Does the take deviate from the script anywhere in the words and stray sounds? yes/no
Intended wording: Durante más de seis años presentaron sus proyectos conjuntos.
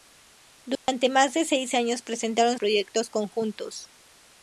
yes